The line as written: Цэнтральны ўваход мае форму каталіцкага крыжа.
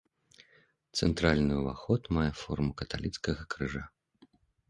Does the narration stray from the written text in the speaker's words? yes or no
no